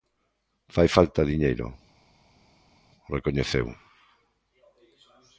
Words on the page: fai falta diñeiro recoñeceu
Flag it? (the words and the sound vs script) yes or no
no